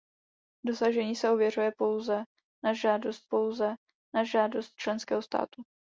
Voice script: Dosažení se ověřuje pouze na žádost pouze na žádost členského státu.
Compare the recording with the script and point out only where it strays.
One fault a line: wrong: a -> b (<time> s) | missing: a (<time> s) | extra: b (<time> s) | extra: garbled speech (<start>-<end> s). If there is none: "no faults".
no faults